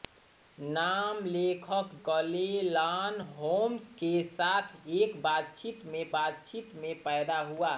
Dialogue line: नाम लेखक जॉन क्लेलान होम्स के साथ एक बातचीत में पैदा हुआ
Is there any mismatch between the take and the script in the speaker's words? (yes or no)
yes